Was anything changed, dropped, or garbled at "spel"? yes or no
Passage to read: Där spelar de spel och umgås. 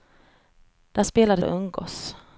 yes